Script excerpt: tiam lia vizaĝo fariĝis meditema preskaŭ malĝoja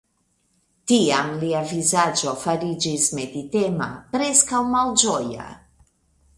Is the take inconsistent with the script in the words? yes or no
no